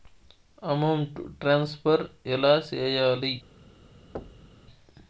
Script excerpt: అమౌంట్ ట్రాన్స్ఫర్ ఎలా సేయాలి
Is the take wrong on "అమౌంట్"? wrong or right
right